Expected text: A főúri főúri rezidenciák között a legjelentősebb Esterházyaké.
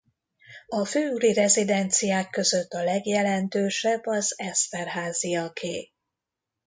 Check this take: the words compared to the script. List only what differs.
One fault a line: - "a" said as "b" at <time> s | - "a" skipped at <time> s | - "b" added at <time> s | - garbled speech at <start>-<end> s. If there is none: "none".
- "főúri" skipped at 1.3 s
- "az" added at 4.1 s